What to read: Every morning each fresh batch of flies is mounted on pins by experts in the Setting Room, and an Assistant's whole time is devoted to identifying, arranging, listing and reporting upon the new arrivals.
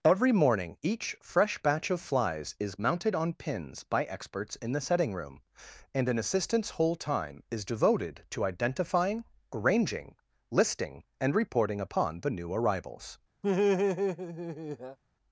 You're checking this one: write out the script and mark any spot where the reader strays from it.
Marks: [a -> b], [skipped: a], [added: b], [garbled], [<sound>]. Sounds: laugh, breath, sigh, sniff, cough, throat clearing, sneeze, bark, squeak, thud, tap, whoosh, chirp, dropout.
Every morning each fresh batch of flies is mounted on pins by experts in the Setting Room, and an Assistant's whole time is devoted to identifying, arranging, listing and reporting upon the new arrivals. [laugh]